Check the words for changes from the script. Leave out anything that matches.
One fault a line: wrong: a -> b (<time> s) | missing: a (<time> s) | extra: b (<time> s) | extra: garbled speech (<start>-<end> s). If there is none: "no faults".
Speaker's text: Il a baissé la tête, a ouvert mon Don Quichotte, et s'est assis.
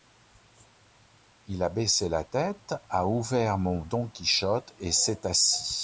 no faults